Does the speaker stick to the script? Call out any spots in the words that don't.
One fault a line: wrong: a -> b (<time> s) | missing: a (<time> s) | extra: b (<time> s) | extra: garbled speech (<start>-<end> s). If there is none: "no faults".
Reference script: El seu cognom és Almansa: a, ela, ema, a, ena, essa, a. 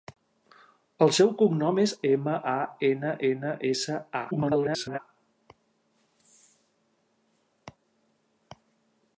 wrong: Almansa -> Ema (2.1 s)
wrong: ela ema a -> ena (2.9 s)
extra: garbled speech (4.3-5.0 s)